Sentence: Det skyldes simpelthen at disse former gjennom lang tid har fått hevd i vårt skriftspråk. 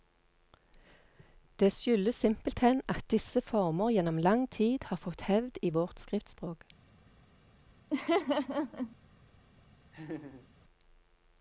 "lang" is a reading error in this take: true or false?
false